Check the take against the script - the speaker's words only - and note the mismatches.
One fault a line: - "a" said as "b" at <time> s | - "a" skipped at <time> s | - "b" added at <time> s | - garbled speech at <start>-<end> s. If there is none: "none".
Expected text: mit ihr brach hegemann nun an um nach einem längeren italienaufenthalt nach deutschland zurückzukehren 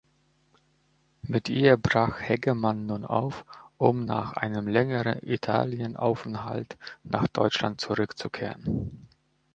- "an" said as "auf" at 3.0 s